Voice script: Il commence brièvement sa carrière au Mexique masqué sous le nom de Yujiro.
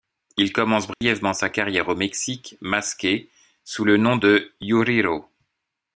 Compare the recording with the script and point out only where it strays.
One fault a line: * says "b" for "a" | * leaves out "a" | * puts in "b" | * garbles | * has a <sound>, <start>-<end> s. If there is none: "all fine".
* has a dropout, 0.9-1.0 s